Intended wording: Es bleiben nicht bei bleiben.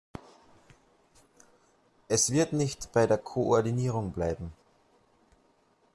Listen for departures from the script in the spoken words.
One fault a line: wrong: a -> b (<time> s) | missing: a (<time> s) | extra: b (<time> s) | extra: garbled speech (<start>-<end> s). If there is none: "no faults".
wrong: bleiben -> wird (2.3 s)
extra: der Koordinierung (3.1 s)